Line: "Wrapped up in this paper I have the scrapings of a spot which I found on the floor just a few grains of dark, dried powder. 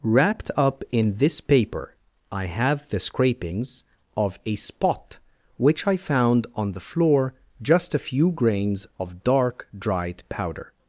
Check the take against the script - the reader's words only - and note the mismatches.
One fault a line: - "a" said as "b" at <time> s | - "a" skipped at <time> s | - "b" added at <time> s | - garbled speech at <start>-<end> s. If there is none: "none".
none